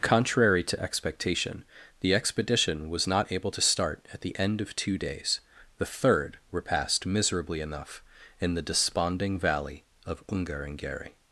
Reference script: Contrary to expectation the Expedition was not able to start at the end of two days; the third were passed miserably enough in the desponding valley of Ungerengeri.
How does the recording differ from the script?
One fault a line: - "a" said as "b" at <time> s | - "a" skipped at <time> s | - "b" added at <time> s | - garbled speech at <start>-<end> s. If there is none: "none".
none